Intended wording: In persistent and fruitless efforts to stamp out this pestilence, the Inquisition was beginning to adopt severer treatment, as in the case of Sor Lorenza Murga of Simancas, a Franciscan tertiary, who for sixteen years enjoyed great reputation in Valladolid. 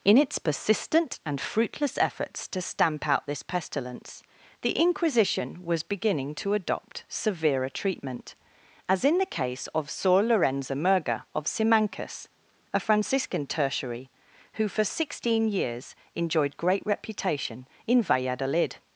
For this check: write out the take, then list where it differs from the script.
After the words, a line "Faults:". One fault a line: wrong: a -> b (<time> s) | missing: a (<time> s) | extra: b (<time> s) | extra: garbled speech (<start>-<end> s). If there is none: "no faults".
In its persistent and fruitless efforts to stamp out this pestilence, the Inquisition was beginning to adopt severer treatment, as in the case of Sor Lorenza Murga of Simancas, a Franciscan tertiary, who for sixteen years enjoyed great reputation in Valladolid.
Faults:
extra: its (0.2 s)